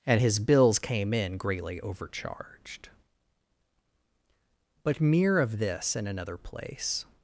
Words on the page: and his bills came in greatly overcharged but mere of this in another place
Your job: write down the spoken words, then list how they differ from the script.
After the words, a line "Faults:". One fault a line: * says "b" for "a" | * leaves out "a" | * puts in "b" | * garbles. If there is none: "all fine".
and his bills came in greatly overcharged but mere of this in another place
Faults:
all fine